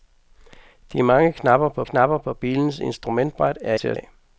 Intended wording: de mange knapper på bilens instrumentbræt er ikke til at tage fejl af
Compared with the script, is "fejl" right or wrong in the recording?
wrong